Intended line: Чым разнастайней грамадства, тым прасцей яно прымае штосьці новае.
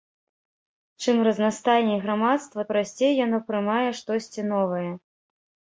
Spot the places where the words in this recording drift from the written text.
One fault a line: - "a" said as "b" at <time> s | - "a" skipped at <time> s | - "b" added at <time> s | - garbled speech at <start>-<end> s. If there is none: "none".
- "тым" skipped at 2.6 s